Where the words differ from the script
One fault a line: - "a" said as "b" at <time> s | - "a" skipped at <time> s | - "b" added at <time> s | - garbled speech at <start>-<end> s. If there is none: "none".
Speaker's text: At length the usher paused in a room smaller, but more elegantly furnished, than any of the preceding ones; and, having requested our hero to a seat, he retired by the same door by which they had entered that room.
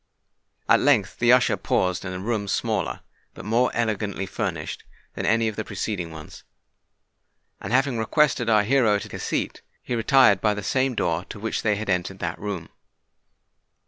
none